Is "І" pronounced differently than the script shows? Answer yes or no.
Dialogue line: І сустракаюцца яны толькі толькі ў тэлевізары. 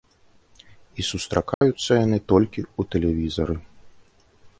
no